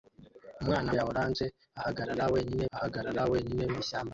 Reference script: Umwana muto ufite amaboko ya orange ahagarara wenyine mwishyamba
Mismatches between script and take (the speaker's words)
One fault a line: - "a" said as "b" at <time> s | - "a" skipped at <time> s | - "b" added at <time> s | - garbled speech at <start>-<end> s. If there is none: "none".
- "muto ufite amaboko ya orange" said as "ya orange ahagarara wenyine" at 1.0 s